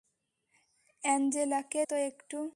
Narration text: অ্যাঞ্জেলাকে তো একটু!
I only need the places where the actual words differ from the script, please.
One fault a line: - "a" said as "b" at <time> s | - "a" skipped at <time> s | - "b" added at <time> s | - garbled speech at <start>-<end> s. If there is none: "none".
none